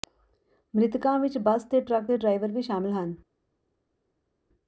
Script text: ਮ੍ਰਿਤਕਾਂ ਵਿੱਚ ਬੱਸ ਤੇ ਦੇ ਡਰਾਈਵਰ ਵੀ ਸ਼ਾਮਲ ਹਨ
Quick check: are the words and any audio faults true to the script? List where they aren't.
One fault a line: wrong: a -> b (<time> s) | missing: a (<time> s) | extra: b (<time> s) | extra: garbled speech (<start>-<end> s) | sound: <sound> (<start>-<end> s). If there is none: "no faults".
extra: ਟਰੱਕ (1.8 s)